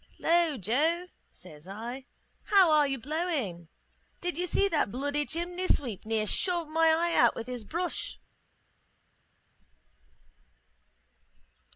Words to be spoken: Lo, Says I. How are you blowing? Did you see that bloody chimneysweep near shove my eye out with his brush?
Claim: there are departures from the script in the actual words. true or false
true